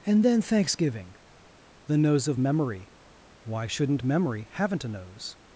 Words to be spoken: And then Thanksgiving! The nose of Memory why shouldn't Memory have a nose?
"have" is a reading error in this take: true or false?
true